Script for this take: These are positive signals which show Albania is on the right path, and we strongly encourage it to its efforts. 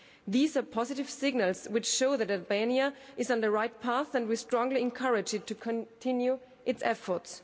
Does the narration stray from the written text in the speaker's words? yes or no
yes